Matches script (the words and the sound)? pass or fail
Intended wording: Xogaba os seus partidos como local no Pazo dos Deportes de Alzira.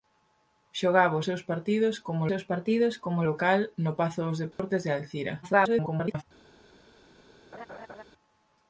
fail